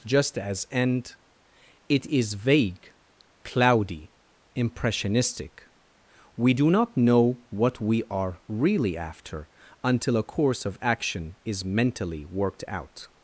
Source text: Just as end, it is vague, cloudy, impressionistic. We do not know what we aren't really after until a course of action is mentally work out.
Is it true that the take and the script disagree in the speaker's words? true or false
true